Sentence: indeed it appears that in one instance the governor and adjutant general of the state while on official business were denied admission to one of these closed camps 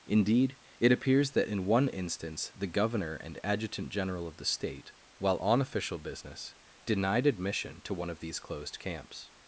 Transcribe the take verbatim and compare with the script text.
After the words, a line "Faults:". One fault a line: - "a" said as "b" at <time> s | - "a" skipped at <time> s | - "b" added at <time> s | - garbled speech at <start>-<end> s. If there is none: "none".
indeed it appears that in one instance the governor and adjutant general of the state while on official business denied admission to one of these closed camps
Faults:
- "were" skipped at 6.5 s